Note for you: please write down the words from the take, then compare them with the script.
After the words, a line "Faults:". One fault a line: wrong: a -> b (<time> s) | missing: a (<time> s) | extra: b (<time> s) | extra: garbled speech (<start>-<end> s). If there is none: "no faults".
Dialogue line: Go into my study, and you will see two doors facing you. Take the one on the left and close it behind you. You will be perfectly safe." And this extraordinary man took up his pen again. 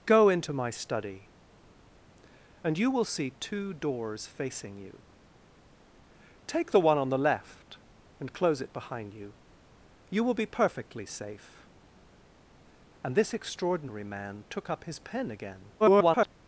Go into my study, and you will see two doors facing you. Take the one on the left and close it behind you. You will be perfectly safe." And this extraordinary man took up his pen again. [garbled]
Faults:
extra: garbled speech (15.8-16.3 s)